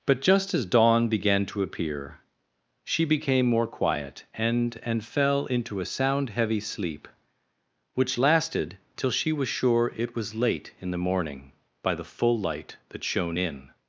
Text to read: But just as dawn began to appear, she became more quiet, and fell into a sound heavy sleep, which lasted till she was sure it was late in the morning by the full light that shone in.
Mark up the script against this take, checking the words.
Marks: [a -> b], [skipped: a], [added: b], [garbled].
But just as dawn began to appear, she became more quiet, and [added: and] fell into a sound heavy sleep, which lasted till she was sure it was late in the morning by the full light that shone in.